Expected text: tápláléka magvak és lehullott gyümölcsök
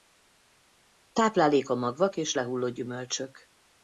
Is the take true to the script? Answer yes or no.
yes